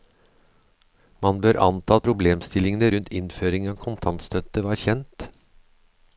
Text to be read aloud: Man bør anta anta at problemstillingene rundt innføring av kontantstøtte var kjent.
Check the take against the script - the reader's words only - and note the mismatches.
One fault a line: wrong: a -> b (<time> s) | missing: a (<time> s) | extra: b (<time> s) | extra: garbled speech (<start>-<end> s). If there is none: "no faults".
missing: anta (2.0 s)